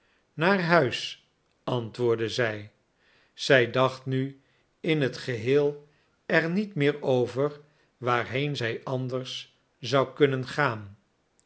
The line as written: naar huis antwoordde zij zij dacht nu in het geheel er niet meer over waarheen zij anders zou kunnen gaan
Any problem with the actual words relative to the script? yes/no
no